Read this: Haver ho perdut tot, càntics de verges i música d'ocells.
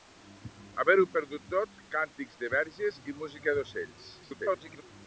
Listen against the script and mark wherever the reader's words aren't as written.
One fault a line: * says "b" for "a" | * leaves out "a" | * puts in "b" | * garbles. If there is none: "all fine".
* garbles